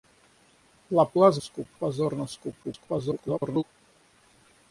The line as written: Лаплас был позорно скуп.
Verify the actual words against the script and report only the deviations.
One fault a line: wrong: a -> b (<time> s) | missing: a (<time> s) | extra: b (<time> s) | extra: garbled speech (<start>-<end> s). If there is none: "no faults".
wrong: был -> скуп (1.4 s)
extra: garbled speech (2.6-3.6 s)